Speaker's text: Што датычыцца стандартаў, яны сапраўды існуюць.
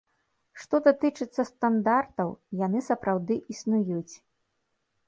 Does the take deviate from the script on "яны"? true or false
false